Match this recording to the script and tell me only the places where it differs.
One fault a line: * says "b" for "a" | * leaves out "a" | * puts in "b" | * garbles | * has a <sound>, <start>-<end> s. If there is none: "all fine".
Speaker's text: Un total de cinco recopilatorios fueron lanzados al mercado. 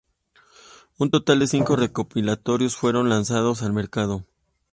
all fine